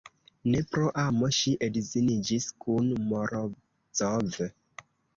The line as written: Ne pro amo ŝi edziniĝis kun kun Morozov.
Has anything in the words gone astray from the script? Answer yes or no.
yes